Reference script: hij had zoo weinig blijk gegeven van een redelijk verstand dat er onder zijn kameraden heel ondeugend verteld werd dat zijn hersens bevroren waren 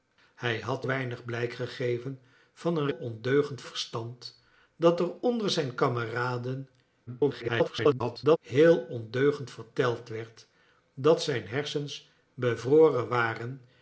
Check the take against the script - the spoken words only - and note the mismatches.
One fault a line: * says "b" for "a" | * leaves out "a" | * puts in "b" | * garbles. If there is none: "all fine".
* leaves out "zoo"
* says "ondeugend" for "redelijk"
* garbles